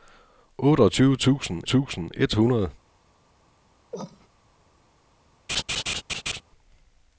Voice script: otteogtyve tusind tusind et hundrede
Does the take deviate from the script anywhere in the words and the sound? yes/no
yes